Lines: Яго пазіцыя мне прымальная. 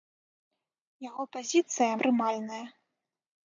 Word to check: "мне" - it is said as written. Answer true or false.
false